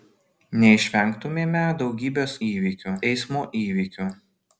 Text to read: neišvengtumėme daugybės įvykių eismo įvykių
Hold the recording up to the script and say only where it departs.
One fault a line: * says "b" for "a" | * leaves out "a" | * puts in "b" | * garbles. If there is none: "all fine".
all fine